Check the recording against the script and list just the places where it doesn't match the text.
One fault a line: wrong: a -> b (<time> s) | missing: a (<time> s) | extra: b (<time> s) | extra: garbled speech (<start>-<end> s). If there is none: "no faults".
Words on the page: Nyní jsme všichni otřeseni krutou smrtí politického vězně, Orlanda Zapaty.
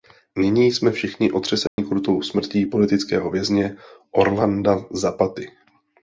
no faults